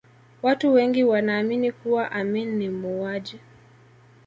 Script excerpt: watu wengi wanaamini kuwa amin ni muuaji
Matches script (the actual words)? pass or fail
pass